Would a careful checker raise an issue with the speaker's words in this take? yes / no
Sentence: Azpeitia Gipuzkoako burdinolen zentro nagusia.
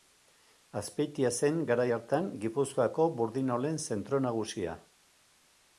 yes